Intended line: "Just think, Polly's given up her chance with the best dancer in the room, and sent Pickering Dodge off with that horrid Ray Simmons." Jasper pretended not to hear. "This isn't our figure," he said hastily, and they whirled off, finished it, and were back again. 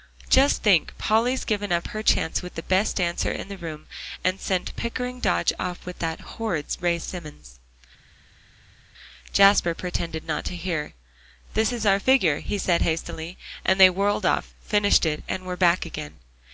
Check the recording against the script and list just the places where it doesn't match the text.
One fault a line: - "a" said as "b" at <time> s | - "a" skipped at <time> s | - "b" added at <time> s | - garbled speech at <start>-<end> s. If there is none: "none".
- "isn't" said as "is" at 11.7 s